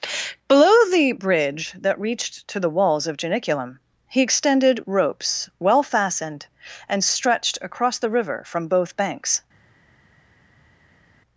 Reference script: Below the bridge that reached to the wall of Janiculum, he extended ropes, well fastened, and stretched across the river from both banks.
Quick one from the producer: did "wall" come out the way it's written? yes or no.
no